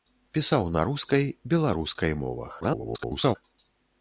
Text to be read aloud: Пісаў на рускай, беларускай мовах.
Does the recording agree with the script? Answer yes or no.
no